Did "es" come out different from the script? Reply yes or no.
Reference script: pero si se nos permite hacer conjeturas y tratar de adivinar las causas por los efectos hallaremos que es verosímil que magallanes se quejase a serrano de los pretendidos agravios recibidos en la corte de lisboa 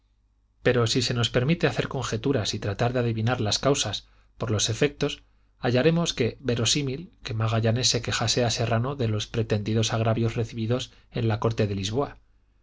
yes